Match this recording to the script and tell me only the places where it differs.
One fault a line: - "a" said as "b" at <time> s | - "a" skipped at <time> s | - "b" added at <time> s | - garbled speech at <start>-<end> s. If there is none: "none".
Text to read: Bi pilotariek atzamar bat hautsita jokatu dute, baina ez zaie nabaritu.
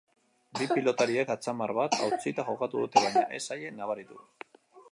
none